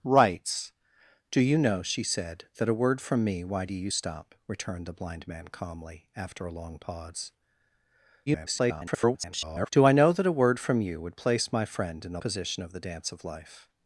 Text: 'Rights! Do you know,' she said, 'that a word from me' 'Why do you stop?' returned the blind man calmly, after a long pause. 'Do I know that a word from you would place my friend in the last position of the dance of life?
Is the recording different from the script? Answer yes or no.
yes